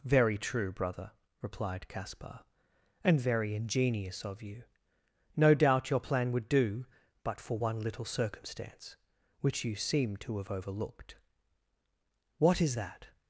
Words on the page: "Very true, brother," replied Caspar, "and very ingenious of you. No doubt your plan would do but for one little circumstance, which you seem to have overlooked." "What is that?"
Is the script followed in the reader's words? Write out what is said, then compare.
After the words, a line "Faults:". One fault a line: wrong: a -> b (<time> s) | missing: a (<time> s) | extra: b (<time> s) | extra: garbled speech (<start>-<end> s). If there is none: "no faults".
"Very true, brother," replied Caspar, "and very ingenious of you. No doubt your plan would do but for one little circumstance, which you seem to have overlooked." "What is that?"
Faults:
no faults